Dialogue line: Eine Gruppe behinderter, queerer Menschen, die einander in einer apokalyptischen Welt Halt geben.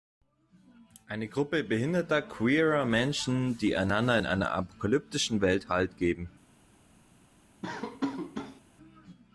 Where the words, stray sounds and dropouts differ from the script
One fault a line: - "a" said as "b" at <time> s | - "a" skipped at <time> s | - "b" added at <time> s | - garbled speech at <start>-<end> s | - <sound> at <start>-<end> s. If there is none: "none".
- laugh at 7.6-8.6 s